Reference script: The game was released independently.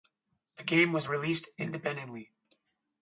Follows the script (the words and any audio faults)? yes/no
yes